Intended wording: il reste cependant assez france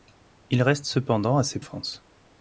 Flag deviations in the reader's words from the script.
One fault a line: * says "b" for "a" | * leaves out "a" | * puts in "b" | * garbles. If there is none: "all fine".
all fine